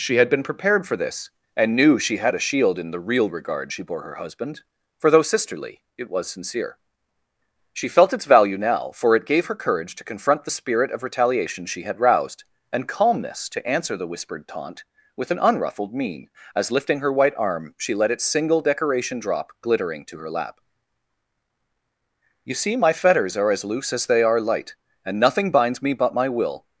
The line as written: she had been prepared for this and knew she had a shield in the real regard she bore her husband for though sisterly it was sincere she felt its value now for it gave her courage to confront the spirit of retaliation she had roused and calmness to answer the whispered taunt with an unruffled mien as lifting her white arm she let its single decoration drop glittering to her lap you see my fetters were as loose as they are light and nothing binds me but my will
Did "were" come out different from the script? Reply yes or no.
yes